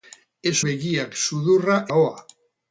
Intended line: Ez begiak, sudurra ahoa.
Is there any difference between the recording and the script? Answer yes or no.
no